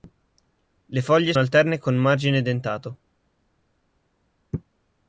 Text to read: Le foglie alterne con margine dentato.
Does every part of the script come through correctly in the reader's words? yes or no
yes